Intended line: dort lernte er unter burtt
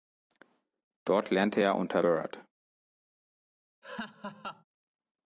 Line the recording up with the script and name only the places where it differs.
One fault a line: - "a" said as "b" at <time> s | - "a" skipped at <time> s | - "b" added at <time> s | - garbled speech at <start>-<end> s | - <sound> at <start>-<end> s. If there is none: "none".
- laugh at 3.8-4.6 s